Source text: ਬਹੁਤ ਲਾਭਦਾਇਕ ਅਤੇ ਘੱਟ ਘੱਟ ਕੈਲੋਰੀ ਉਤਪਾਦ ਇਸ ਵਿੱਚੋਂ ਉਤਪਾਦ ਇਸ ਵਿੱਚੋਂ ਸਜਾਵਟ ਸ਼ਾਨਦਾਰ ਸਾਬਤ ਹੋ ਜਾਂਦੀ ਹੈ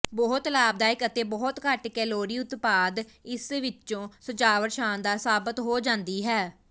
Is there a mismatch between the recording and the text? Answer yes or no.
yes